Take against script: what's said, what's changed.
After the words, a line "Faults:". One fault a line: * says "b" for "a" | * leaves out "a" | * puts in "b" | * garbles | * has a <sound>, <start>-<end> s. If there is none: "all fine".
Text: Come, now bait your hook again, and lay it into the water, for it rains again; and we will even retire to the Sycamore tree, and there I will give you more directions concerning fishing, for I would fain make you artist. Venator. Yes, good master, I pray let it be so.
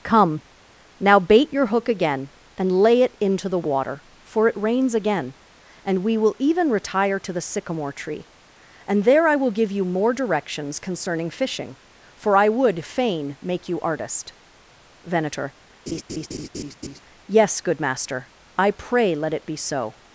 Come, now bait your hook again, and lay it into the water, for it rains again; and we will even retire to the Sycamore tree, and there I will give you more directions concerning fishing, for I would fain make you artist. Venator. Yes, good master, I pray let it be so.
Faults:
* has a laugh, 15.9-17.0 s